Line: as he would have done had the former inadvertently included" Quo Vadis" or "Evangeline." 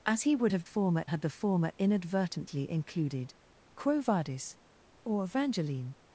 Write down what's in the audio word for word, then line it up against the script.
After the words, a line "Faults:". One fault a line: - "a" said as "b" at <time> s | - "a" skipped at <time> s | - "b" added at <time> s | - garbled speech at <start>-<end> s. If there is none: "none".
as he would have former had the former inadvertently included" Quo Vadis" or "Evangeline."
Faults:
- "done" said as "former" at 0.6 s